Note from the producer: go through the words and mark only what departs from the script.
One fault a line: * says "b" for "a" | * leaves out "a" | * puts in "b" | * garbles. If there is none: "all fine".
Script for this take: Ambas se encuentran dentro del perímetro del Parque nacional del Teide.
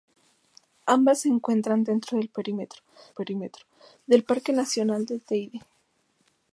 * puts in "perímetro"